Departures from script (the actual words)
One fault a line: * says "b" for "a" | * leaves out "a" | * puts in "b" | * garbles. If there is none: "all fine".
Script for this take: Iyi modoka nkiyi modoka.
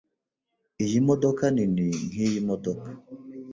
* puts in "nini"